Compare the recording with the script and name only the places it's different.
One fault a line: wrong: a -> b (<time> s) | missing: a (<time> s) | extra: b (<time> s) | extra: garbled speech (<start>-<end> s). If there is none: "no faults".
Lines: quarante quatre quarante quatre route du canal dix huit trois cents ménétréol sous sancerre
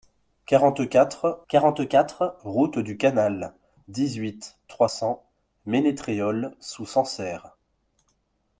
no faults